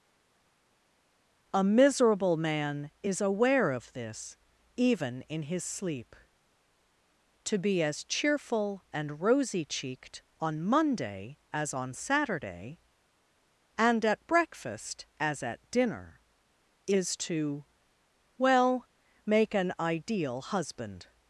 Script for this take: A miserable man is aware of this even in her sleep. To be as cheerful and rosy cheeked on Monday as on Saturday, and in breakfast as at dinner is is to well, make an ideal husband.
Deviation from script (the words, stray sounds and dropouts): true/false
true